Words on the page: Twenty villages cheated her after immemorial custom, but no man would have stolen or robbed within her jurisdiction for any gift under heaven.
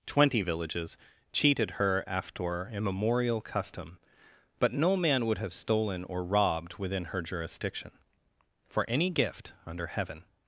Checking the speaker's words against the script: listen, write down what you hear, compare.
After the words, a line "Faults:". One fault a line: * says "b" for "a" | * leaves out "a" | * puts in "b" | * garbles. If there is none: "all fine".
Twenty villages cheated her after immemorial custom, but no man would have stolen or robbed within her jurisdiction for any gift under heaven.
Faults:
all fine